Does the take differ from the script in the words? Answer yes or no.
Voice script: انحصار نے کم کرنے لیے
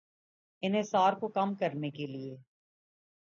yes